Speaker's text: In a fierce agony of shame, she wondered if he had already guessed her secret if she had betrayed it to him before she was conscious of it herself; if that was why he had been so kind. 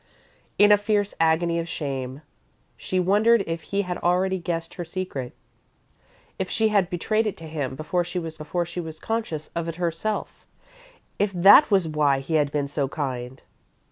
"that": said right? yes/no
yes